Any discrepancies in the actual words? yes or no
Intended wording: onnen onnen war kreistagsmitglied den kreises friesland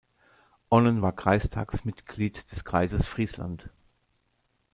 yes